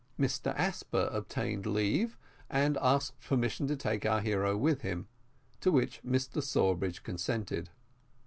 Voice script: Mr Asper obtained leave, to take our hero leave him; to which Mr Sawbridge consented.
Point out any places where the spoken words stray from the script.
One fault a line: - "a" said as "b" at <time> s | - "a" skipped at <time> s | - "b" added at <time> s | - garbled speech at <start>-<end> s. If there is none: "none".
- "and asked permission" added at 2.5 s
- "leave" said as "with" at 4.5 s